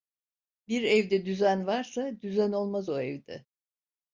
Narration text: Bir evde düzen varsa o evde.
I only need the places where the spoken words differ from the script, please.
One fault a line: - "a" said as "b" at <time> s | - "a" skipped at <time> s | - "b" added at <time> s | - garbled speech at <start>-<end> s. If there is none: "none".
- "düzen olmaz" added at 2.2 s